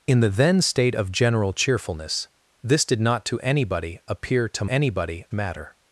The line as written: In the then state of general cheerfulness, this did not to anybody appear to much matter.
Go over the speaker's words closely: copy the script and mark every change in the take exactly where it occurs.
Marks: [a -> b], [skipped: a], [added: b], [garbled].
In the then state of general cheerfulness, this did not to anybody appear to [much -> anybody] matter.